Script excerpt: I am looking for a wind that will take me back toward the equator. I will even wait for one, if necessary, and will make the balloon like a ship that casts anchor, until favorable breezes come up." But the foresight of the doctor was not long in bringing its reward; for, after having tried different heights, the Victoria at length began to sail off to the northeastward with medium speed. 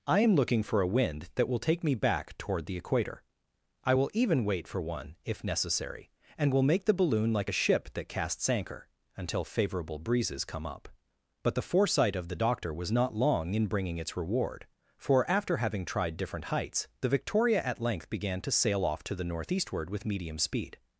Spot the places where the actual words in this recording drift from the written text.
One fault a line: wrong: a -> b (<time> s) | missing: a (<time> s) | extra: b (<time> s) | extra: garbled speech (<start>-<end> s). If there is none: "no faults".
no faults